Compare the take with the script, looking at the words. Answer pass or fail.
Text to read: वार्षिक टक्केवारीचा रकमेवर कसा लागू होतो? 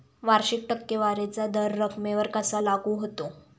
fail